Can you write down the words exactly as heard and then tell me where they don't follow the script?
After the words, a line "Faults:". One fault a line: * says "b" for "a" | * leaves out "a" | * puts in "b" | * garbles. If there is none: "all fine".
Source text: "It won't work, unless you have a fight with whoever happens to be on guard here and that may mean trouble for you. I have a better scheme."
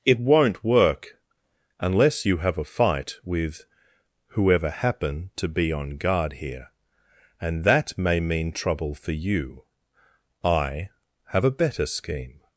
"It won't work, unless you have a fight with whoever happen to be on guard here and that may mean trouble for you. I have a better scheme."
Faults:
* says "happen" for "happens"